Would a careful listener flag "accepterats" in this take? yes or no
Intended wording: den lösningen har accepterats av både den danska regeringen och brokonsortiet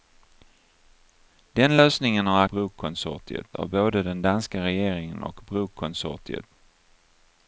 yes